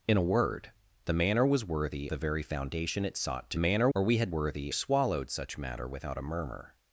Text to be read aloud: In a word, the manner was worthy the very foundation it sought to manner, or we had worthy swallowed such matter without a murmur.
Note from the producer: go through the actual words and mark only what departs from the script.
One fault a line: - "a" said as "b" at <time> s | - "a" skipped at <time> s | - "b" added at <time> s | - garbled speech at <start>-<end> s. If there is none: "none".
none